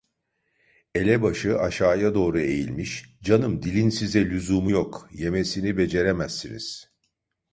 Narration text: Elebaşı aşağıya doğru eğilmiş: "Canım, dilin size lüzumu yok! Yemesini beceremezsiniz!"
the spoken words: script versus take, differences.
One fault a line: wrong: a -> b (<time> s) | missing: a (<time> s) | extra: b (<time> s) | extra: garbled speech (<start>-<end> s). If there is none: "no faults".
no faults